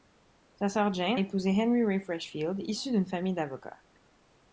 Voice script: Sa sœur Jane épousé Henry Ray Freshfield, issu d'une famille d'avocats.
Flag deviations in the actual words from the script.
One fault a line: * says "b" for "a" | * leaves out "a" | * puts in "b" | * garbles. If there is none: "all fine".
all fine